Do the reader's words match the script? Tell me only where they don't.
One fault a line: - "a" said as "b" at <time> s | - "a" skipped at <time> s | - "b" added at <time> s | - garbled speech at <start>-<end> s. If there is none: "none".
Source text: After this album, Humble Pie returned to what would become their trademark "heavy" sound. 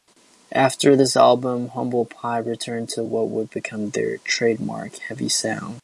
none